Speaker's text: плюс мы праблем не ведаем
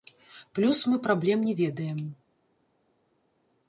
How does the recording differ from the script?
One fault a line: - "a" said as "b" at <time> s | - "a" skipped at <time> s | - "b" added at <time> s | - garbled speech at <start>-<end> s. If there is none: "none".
none